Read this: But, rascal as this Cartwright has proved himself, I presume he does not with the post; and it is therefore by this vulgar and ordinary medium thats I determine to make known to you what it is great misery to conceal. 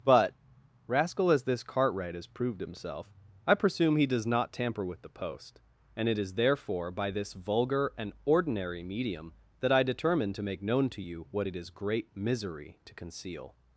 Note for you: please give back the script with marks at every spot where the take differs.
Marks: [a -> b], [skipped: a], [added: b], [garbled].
But, rascal as this Cartwright has proved himself, I presume he does not [added: tamper] with the post; and it is therefore by this vulgar and ordinary medium [thats -> that] I determine to make known to you what it is great misery to conceal.